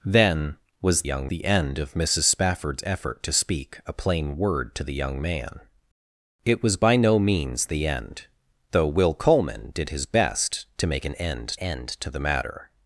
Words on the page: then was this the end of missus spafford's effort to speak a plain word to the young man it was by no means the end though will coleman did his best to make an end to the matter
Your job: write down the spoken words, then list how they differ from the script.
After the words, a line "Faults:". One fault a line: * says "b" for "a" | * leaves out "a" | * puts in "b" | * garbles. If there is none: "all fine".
then was young the end of missus spafford's effort to speak a plain word to the young man it was by no means the end though will coleman did his best to make an end end to the matter
Faults:
* says "young" for "this"
* puts in "end"